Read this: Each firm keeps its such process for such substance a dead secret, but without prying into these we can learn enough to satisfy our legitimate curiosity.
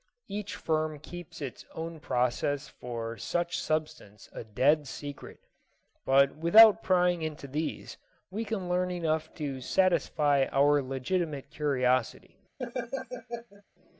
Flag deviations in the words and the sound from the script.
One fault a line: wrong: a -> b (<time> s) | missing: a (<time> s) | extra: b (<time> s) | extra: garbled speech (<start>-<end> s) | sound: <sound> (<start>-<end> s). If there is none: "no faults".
wrong: such -> own (1.8 s)
sound: laugh (12.6-13.6 s)